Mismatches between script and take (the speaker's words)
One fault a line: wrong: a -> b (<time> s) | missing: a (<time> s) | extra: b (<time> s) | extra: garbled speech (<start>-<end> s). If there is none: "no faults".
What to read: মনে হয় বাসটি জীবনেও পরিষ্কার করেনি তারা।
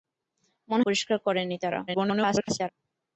missing: হয় বাসটি জীবনেও (0.8 s)
extra: garbled speech (1.9-2.7 s)